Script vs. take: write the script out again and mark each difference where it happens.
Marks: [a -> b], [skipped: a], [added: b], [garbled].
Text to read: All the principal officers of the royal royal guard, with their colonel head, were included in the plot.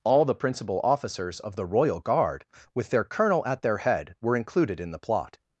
All the principal officers of the royal [skipped: royal] guard, with their colonel [added: at their] head, were included in the plot.